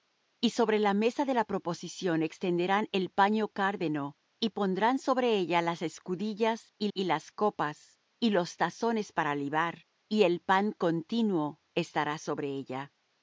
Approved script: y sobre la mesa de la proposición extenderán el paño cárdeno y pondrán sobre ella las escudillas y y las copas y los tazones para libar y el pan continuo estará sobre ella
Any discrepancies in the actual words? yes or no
no